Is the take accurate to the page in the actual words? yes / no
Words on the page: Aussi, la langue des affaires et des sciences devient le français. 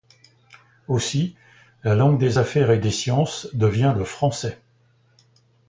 yes